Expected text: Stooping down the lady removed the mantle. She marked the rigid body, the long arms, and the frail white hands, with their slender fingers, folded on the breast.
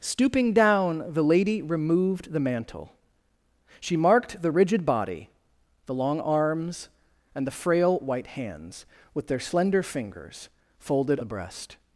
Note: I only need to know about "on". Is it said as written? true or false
false